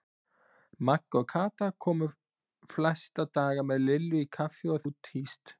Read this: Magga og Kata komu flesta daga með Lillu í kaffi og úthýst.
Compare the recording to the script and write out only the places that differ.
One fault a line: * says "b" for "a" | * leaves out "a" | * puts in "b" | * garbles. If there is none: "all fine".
all fine